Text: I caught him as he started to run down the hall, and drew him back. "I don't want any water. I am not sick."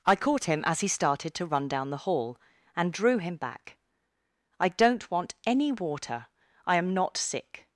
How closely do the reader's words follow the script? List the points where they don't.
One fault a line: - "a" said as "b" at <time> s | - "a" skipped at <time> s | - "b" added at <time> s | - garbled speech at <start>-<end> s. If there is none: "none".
none